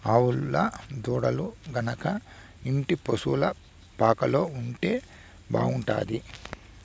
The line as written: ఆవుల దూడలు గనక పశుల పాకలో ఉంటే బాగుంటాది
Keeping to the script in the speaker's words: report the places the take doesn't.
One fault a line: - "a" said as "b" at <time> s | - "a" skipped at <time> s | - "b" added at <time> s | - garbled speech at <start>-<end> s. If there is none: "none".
- "ఇంటి" added at 2.6 s